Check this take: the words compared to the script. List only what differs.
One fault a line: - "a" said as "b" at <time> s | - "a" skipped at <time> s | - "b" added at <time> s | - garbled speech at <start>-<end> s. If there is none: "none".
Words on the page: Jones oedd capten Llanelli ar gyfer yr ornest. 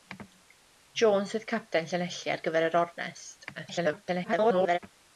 - garbled speech at 3.5-4.8 s